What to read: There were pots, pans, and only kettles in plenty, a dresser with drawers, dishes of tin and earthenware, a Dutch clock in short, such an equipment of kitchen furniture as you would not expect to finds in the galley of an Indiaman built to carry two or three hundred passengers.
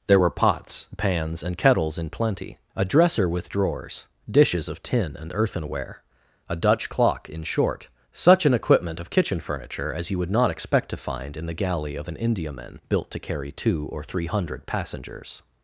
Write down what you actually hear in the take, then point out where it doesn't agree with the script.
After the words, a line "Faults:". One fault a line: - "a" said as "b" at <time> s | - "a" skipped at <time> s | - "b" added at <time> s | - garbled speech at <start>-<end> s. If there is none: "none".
There were pots, pans, and kettles in plenty, a dresser with drawers, dishes of tin and earthenware, a Dutch clock in short, such an equipment of kitchen furniture as you would not expect to find in the galley of an Indiaman built to carry two or three hundred passengers.
Faults:
- "only" skipped at 1.6 s
- "finds" said as "find" at 11.0 s